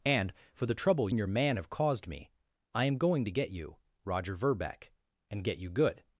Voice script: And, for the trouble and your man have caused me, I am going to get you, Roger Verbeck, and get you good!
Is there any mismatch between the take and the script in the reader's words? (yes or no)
no